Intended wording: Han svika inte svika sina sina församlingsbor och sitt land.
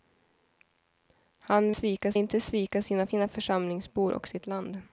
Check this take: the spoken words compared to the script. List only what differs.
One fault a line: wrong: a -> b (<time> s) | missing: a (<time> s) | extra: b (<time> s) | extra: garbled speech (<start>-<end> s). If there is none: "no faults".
no faults